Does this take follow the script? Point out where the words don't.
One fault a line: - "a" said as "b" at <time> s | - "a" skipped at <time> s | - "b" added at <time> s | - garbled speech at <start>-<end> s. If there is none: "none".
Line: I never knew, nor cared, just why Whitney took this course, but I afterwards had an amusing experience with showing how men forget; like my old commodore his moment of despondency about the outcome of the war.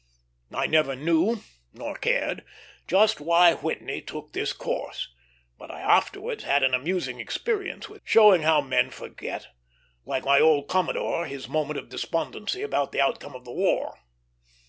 none